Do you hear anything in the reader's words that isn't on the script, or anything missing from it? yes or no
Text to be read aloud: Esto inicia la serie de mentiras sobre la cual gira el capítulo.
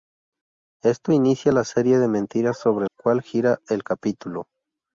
yes